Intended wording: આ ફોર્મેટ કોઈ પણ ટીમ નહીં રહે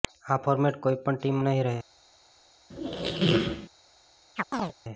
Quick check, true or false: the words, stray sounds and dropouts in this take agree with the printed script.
false